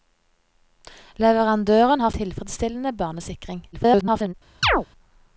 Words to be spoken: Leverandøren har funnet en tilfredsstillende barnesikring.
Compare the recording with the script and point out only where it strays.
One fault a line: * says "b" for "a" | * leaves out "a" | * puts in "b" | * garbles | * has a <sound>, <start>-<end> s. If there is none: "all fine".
* leaves out "funnet en"
* garbles
* has a chirp, 4.6-4.9 s